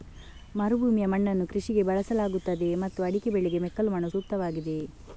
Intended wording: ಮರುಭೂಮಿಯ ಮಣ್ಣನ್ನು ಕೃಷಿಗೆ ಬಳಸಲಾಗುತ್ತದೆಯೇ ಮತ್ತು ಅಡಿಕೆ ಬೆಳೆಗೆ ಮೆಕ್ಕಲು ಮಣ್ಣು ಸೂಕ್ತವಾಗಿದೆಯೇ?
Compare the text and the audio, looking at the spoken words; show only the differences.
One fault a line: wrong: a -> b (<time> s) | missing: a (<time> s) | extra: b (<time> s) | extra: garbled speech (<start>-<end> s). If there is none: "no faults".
no faults